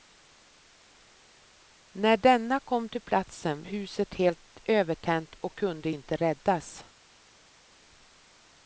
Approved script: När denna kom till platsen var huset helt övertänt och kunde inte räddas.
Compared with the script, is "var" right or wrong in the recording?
wrong